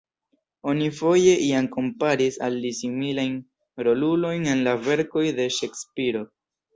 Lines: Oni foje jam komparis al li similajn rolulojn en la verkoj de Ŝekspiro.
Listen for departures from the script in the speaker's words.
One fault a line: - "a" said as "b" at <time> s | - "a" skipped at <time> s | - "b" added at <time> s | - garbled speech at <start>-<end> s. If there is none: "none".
none